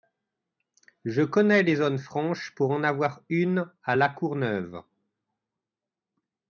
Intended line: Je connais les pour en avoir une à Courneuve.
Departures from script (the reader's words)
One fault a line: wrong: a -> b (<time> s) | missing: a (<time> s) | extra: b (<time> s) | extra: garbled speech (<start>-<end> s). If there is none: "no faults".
extra: zones franches (1.8 s)
extra: La (3.9 s)